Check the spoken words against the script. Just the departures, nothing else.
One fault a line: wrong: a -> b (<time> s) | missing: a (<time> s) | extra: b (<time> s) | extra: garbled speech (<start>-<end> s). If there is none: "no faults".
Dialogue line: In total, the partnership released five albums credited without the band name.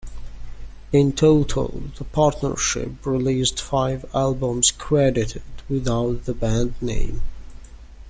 no faults